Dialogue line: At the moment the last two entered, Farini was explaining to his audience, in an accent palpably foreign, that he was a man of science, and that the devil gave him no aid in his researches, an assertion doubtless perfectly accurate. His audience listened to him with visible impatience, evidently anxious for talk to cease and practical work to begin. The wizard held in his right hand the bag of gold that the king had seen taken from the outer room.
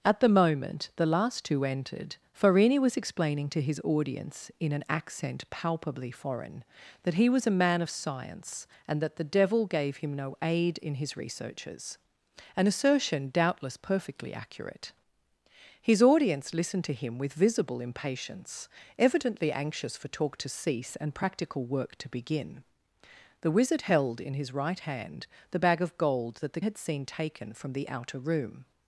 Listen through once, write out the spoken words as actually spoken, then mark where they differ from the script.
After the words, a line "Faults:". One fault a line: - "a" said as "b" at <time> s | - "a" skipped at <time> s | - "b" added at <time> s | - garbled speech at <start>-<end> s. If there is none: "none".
At the moment the last two entered, Farini was explaining to his audience, in an accent palpably foreign, that he was a man of science, and that the devil gave him no aid in his researches, an assertion doubtless perfectly accurate. His audience listened to him with visible impatience, evidently anxious for talk to cease and practical work to begin. The wizard held in his right hand the bag of gold that the had seen taken from the outer room.
Faults:
- "king" skipped at 26.6 s